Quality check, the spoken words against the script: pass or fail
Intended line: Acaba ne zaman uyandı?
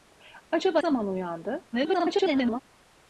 fail